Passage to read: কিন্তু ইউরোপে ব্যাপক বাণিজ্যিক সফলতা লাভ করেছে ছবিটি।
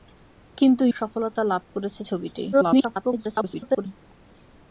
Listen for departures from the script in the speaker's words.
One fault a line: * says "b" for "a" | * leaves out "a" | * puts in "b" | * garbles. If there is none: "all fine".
* leaves out "ইউরোপে ব্যাপক বাণিজ্যিক"
* garbles